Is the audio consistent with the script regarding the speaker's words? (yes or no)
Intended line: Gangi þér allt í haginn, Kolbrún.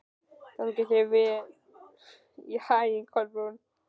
yes